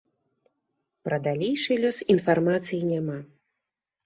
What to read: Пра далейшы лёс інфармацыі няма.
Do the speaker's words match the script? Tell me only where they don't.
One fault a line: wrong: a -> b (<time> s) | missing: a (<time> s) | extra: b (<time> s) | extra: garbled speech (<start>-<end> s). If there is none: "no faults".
no faults